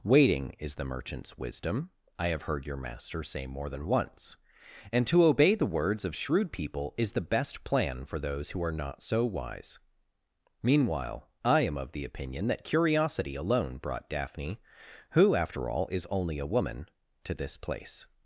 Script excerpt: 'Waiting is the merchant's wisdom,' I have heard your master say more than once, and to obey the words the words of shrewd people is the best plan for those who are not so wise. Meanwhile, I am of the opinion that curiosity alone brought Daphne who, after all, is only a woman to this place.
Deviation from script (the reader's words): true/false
true